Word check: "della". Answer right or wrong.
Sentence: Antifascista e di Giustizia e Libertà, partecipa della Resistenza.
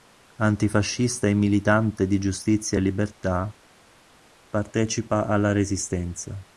wrong